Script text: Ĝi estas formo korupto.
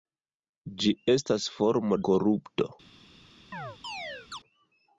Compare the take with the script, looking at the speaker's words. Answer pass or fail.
pass